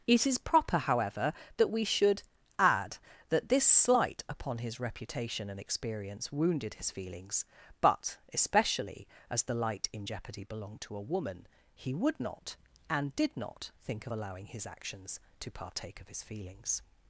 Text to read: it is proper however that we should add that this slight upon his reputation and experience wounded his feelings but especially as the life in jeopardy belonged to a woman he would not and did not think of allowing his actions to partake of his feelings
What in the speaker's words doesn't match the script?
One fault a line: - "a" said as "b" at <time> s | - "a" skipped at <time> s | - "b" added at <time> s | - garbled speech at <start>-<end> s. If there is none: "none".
- "life" said as "light" at 9.6 s